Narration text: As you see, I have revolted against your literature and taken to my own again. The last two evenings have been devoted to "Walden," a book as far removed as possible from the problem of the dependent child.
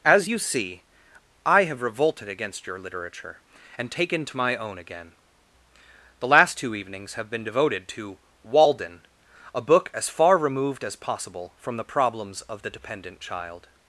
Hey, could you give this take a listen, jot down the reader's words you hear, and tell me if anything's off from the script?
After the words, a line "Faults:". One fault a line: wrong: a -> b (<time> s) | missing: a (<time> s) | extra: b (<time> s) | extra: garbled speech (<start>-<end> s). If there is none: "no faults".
As you see, I have revolted against your literature and taken to my own again. The last two evenings have been devoted to "Walden," a book as far removed as possible from the problems of the dependent child.
Faults:
wrong: problem -> problems (11.9 s)